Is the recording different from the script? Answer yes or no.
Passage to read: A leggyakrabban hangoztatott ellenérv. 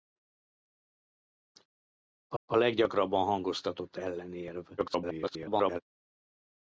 yes